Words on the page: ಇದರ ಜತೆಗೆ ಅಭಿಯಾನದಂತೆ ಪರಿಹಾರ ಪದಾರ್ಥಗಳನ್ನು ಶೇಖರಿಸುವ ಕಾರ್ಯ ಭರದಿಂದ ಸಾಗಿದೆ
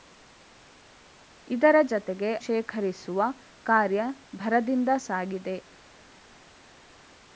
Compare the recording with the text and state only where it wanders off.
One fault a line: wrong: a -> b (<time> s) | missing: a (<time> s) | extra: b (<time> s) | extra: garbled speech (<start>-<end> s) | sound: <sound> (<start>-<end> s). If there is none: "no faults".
missing: ಅಭಿಯಾನದಂತೆ ಪರಿಹಾರ ಪದಾರ್ಥಗಳನ್ನು (2.3 s)